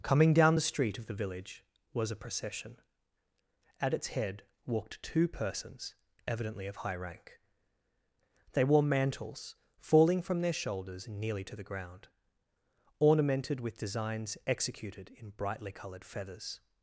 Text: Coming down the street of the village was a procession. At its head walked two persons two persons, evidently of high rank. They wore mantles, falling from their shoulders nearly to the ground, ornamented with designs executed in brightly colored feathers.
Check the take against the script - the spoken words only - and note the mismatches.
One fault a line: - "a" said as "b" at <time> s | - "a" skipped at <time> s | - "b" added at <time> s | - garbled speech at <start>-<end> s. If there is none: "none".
- "two persons" skipped at 6.0 s